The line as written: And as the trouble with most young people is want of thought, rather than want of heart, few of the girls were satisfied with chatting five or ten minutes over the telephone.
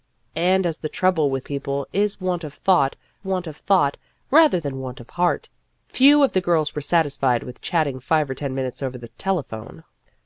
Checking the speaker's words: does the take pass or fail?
fail